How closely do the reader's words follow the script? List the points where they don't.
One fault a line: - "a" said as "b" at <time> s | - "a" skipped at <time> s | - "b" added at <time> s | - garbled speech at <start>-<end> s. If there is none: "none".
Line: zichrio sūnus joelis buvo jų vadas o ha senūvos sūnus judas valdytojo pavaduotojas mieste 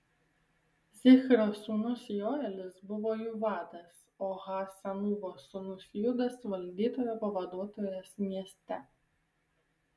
none